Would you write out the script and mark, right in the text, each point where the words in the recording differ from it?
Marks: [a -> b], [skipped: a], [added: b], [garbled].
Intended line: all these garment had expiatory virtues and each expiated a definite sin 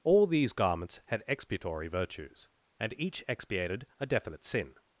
all these [garment -> garments] had expiatory virtues and each expiated a definite sin